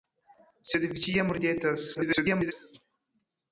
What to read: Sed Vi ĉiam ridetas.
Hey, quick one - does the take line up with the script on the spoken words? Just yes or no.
no